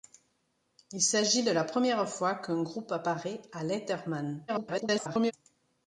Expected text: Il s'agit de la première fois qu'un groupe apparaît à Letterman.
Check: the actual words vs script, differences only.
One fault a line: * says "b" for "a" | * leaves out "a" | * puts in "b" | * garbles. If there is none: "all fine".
* garbles